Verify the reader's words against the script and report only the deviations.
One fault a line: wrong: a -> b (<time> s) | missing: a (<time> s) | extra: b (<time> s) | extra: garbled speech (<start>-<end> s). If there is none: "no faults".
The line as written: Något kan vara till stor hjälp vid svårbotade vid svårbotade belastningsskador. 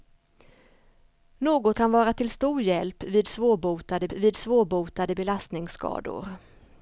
no faults